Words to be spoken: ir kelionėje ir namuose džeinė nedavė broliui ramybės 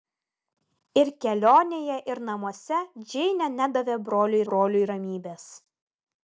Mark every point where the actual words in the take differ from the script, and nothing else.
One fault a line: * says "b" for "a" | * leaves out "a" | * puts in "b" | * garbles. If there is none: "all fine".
* puts in "broliui"